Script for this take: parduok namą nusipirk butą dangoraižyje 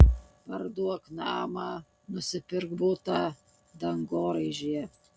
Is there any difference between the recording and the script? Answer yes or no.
no